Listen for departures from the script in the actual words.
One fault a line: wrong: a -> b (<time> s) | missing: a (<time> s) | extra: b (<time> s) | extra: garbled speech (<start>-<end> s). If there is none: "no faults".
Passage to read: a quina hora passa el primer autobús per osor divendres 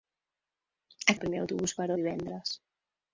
missing: quina hora passa (1.1 s)
missing: osor (1.9 s)